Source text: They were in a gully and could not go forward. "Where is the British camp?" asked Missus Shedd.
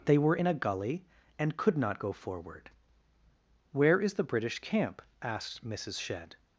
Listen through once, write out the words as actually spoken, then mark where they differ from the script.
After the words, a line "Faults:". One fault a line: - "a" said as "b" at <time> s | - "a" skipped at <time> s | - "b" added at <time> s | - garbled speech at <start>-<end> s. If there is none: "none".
They were in a gully and could not go forward. "Where is the British camp?" asked Missus Shedd.
Faults:
none